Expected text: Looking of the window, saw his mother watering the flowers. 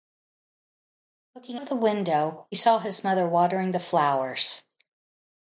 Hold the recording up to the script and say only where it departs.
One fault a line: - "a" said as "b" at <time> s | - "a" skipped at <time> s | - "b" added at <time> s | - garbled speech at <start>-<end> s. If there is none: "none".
none